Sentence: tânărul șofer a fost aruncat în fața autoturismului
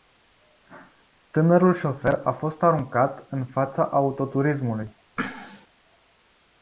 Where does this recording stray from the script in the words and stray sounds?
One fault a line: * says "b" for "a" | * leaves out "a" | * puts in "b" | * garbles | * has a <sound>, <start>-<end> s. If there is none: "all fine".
* has a sneeze, 5.2-5.7 s